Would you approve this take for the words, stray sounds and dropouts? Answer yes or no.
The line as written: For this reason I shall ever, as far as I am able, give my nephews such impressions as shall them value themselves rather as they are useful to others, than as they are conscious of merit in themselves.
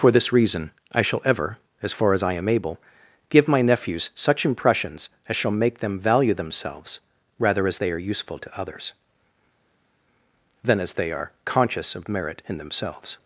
no